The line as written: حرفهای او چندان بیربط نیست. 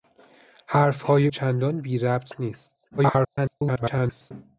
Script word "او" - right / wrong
wrong